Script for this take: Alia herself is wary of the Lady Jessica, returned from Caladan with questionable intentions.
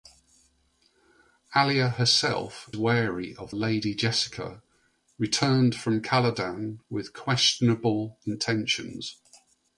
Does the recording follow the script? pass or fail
fail